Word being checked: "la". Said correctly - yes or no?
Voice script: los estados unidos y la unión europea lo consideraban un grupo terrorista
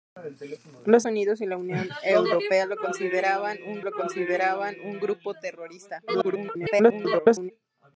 yes